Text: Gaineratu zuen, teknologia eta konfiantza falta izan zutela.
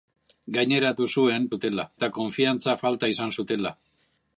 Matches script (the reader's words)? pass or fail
fail